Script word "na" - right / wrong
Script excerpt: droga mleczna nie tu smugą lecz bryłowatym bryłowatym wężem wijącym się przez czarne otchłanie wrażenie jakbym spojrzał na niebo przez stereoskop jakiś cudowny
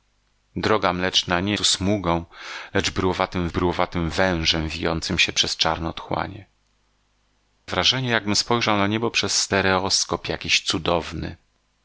right